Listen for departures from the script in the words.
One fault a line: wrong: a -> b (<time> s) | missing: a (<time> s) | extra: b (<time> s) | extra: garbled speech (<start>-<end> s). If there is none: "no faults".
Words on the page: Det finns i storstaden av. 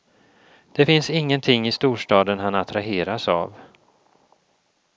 extra: ingenting (1.1 s)
extra: han attraheras (2.4 s)